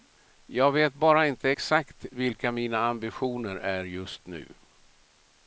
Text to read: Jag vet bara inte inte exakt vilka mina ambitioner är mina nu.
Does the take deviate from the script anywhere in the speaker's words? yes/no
yes